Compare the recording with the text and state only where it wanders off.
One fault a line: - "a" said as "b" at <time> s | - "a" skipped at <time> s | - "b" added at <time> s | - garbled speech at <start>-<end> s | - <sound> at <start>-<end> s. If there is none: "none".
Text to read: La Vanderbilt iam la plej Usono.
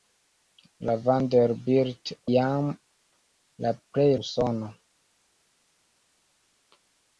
none